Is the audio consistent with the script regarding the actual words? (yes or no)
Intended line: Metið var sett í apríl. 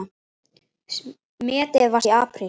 no